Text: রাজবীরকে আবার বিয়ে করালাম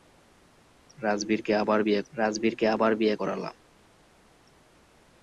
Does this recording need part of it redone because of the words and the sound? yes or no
yes